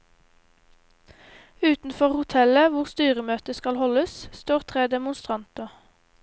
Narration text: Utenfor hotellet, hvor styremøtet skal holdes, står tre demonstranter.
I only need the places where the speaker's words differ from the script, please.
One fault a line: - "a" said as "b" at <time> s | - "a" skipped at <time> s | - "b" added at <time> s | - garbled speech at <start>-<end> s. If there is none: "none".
none